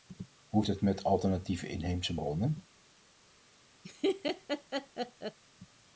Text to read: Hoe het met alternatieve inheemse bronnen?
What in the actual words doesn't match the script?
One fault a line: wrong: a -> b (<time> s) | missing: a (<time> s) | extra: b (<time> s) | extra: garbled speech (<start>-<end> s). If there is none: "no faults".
no faults